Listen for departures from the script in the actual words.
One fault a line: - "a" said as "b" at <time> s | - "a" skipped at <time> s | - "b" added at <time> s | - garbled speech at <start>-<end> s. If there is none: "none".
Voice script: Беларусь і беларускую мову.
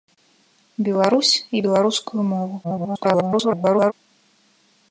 - garbled speech at 2.6-3.9 s